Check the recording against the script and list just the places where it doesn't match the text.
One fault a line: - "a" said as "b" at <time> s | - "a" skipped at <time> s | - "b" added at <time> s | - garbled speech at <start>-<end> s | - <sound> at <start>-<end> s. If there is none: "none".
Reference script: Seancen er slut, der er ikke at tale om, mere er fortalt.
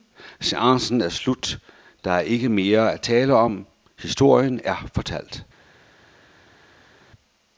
- "mere" added at 2.5 s
- "mere" said as "historien" at 4.0 s